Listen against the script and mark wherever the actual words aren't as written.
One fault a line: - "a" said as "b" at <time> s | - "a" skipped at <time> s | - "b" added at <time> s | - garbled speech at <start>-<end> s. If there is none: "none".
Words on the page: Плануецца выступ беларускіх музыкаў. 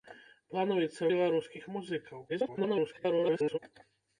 - "выступ" skipped at 1.1 s
- garbled speech at 2.3-3.6 s